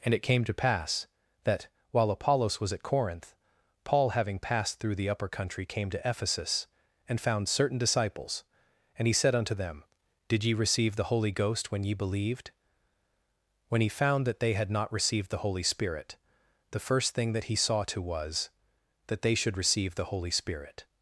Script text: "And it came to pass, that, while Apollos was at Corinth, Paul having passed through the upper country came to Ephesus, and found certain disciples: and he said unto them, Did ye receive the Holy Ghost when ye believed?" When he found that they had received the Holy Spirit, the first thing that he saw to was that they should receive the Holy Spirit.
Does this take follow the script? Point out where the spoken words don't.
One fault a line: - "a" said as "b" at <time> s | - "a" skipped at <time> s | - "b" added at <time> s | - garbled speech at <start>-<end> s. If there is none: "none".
- "not" added at 14.7 s